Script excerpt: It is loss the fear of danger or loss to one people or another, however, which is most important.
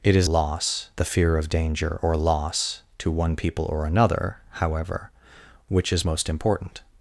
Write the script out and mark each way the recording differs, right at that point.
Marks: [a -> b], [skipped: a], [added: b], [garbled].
It is loss the fear of danger or loss to one people or another, however, which is most important.